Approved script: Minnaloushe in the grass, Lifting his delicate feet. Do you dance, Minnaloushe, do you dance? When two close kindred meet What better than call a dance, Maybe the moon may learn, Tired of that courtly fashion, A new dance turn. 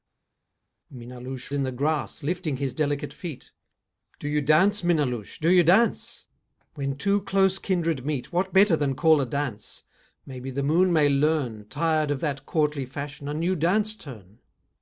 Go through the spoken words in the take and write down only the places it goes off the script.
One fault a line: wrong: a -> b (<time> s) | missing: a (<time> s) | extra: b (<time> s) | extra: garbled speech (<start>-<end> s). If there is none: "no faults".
no faults